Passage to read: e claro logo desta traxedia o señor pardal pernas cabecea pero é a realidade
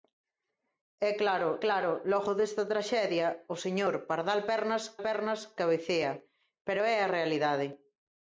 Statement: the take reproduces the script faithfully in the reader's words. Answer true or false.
false